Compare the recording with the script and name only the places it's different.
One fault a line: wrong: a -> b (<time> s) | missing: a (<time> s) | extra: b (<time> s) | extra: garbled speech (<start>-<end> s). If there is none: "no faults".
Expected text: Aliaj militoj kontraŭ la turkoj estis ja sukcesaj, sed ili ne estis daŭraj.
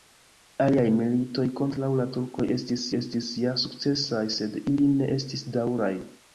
extra: estis (3.0 s)